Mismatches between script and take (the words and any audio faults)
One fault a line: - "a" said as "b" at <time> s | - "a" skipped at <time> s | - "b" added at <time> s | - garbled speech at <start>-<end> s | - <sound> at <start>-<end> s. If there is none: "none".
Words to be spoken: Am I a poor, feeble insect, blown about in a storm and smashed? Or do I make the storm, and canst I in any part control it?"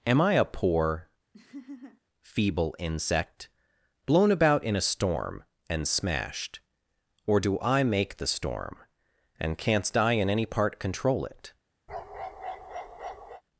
- laugh at 1.3-2.0 s
- bark at 11.9-13.4 s